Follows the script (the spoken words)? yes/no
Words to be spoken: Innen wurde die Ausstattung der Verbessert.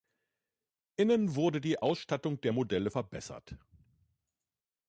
no